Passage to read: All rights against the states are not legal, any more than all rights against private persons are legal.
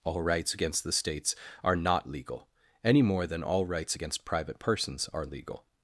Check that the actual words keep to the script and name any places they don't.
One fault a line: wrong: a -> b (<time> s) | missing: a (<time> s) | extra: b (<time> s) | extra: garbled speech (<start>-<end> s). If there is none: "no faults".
no faults